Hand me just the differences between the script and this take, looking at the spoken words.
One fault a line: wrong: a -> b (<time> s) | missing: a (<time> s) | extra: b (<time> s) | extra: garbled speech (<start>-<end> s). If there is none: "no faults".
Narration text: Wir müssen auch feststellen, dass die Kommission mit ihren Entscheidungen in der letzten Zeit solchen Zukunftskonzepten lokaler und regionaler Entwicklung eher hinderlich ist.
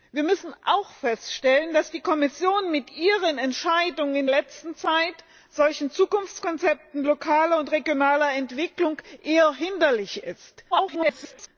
missing: der (4.3 s)
extra: garbled speech (10.7-11.5 s)